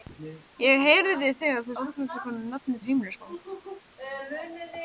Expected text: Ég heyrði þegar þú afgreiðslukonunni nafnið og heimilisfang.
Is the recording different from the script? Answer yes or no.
no